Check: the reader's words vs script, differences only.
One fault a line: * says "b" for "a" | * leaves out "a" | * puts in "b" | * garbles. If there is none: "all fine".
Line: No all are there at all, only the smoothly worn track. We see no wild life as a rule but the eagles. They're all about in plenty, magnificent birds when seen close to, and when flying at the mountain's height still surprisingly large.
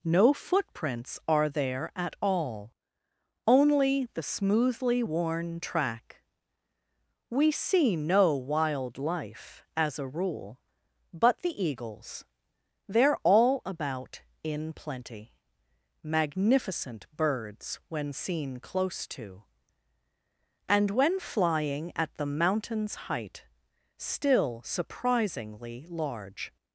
* says "footprints" for "all"